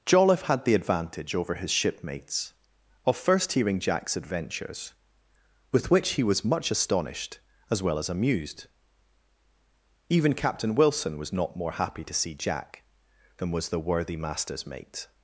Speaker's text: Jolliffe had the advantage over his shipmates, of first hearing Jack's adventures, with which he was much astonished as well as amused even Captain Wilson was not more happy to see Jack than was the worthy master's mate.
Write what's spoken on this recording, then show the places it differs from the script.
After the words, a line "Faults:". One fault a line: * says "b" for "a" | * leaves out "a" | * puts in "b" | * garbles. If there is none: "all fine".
Jolliffe had the advantage over his shipmates, of first hearing Jack's adventures, with which he was much astonished as well as amused even Captain Wilson was not more happy to see Jack than was the worthy master's mate.
Faults:
all fine